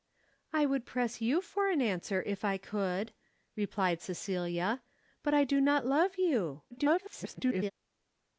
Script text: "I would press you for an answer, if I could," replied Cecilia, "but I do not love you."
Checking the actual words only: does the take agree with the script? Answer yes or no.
no